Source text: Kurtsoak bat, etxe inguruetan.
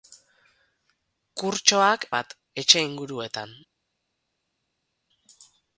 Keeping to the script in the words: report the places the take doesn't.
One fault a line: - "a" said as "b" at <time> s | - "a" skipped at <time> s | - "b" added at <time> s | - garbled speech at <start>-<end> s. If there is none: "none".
none